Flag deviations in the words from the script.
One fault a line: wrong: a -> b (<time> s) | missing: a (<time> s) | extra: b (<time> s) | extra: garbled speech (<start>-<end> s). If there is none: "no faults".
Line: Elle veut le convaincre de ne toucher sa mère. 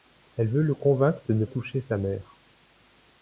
no faults